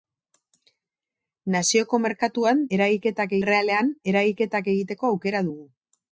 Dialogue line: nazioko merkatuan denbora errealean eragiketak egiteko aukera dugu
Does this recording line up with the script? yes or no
no